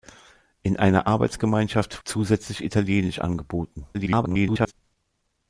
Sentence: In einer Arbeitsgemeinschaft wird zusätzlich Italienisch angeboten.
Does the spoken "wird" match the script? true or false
false